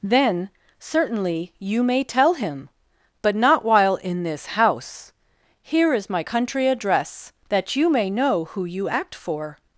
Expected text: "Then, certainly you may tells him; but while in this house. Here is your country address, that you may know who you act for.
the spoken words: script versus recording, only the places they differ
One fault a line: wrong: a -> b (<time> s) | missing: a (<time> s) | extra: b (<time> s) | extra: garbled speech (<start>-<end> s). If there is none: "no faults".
wrong: tells -> tell (2.0 s)
extra: not (3.4 s)
wrong: your -> my (6.1 s)